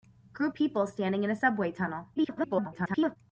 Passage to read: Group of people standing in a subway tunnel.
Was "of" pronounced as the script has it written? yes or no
no